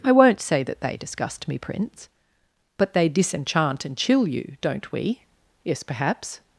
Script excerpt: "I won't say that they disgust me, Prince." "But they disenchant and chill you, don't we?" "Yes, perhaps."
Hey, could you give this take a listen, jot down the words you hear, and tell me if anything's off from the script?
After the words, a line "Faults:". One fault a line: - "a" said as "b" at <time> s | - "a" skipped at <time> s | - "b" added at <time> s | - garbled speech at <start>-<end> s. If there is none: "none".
"I won't say that they disgust me, Prince." "But they disenchant and chill you, don't we?" "Yes, perhaps."
Faults:
none